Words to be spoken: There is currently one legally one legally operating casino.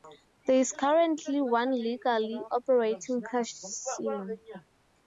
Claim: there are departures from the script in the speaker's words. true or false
true